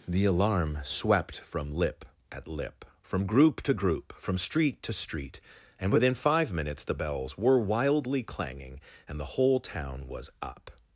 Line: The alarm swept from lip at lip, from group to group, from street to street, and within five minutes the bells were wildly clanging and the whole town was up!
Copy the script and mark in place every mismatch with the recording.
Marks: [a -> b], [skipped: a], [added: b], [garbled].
The alarm swept from lip at lip, from group to group, from street to street, and within five minutes the bells were wildly clanging and the whole town was up!